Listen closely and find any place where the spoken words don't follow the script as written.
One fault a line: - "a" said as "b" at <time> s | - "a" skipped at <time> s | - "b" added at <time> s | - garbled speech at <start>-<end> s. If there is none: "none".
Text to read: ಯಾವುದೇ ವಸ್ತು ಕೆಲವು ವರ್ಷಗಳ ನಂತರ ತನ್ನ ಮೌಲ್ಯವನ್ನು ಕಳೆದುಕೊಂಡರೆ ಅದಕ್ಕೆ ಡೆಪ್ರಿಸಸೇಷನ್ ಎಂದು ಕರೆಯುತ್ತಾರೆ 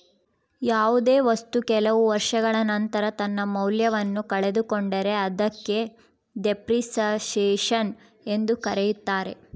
none